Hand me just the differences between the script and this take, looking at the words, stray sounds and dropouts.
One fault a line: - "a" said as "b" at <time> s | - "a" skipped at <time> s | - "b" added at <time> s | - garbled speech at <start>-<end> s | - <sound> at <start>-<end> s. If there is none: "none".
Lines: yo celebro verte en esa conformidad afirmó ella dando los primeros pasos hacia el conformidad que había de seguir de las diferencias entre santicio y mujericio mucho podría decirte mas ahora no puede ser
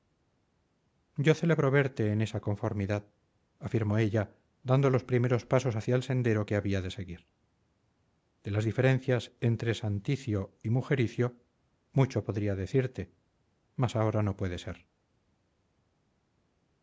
- "conformidad" said as "sendero" at 6.0 s